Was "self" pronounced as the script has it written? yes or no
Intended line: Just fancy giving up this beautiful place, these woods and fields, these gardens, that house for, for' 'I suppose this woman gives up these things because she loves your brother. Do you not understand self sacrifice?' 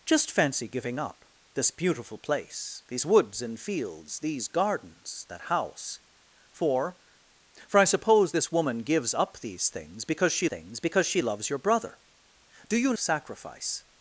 no